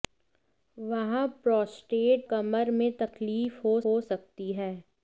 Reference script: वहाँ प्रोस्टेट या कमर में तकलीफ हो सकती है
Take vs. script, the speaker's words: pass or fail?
fail